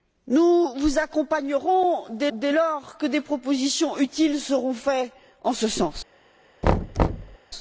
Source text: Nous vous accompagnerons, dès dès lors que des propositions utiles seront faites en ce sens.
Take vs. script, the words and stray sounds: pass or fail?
fail